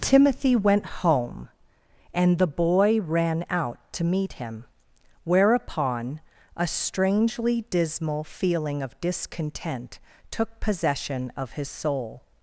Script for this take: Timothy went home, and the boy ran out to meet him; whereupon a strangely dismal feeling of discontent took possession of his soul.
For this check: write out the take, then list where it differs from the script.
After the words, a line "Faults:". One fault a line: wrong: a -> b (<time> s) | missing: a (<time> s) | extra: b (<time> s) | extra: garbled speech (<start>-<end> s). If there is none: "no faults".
Timothy went home, and the boy ran out to meet him; whereupon a strangely dismal feeling of discontent took possession of his soul.
Faults:
no faults